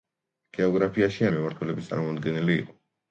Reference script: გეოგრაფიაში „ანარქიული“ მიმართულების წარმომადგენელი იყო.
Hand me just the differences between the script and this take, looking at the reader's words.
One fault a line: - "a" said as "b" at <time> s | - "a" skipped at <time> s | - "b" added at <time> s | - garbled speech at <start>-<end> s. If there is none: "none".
- "ანარქიული" skipped at 1.3 s